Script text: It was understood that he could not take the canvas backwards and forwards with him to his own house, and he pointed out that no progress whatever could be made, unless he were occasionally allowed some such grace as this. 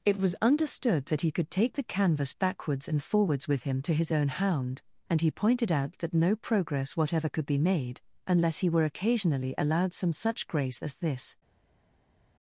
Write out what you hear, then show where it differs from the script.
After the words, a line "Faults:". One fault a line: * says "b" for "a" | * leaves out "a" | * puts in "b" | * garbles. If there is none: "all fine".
It was understood that he could take the canvas backwards and forwards with him to his own hound, and he pointed out that no progress whatever could be made, unless he were occasionally allowed some such grace as this.
Faults:
* leaves out "not"
* says "hound" for "house"